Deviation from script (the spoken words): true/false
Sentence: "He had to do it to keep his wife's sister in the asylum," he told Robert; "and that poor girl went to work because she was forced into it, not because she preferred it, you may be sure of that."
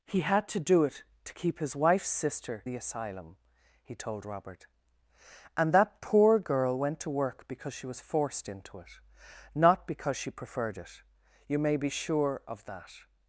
true